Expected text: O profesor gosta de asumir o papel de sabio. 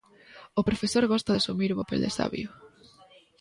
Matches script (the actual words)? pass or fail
pass